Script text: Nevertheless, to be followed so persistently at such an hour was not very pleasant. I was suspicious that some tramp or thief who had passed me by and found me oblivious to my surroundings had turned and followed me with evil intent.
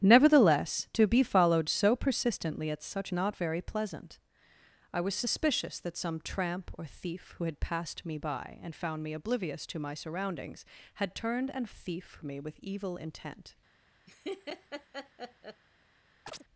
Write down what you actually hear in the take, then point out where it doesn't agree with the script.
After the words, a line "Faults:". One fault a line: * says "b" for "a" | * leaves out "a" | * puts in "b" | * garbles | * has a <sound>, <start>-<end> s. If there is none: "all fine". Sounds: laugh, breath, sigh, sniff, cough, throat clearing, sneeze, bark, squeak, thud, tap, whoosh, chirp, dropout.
Nevertheless, to be followed so persistently at such not very pleasant. I was suspicious that some tramp or thief who had passed me by and found me oblivious to my surroundings had turned and thief me with evil intent.
Faults:
* leaves out "an hour was"
* says "thief" for "followed"
* has a laugh, 14.1-15.6 s
* has a chirp, 16.3-16.4 s